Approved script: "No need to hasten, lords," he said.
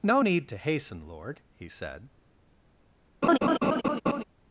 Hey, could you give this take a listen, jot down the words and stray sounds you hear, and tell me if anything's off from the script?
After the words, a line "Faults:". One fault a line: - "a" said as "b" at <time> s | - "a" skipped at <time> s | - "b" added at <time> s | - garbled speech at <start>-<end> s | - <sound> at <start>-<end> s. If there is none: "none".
"No need to hasten, lord," he said.
Faults:
- "lords" said as "lord" at 1.0 s
- laugh at 3.2-4.2 s